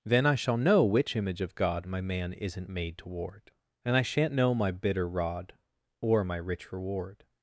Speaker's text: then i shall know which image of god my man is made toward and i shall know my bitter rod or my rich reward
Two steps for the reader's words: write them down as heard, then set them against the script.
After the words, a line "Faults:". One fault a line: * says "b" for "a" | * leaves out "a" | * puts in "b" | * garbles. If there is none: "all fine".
then i shall know which image of god my man isn't made toward and i shan't know my bitter rod or my rich reward
Faults:
* says "isn't" for "is"
* says "shan't" for "shall"